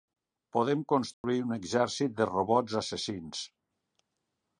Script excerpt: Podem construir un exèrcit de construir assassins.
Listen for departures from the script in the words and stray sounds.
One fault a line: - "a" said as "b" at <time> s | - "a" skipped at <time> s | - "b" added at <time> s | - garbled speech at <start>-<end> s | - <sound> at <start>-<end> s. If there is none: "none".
- dropout at 1.1-1.2 s
- "construir" said as "robots" at 2.3 s